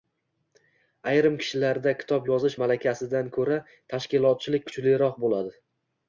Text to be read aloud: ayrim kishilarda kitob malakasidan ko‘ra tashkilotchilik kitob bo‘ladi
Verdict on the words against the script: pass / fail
fail